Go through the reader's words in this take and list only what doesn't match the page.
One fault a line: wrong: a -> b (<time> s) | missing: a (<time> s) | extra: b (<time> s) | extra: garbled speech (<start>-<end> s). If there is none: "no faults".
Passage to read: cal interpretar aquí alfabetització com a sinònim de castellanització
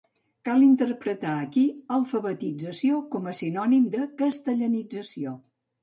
no faults